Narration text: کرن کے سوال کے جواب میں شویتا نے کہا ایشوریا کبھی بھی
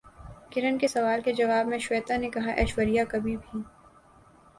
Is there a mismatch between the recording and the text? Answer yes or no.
no